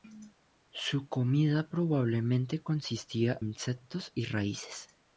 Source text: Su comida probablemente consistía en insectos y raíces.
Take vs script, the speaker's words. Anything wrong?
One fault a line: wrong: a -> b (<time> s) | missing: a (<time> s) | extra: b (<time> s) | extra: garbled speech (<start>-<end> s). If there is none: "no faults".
missing: en (3.4 s)